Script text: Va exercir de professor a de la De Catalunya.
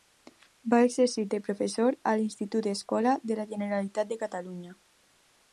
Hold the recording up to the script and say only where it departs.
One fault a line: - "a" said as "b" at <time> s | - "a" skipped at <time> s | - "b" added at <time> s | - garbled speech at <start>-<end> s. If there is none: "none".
- "l'Institut Escola" added at 2.2 s
- "Generalitat" added at 3.5 s